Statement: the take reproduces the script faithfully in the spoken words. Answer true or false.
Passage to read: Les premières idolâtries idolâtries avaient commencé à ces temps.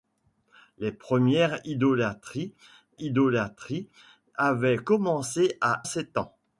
true